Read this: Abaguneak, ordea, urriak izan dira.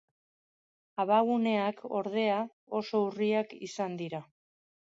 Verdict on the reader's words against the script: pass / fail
fail